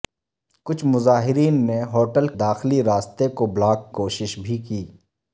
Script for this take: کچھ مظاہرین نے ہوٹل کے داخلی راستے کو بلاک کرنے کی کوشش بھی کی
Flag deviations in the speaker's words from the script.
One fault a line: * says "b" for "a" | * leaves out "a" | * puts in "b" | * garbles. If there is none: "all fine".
* leaves out "کے"
* leaves out "کرنے کی"